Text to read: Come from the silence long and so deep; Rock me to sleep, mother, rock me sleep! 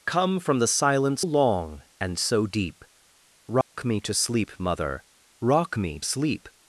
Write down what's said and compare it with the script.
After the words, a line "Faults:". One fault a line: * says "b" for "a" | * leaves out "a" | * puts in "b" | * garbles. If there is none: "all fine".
Come from the silence long and so deep; Rock me to sleep, mother, rock me sleep!
Faults:
all fine